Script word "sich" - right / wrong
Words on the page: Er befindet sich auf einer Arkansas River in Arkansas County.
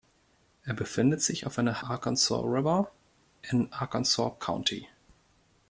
right